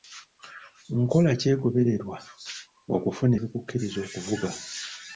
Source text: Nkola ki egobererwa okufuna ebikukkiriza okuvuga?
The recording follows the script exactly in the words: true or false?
true